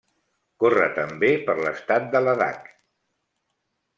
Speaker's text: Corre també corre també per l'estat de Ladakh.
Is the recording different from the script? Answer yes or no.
yes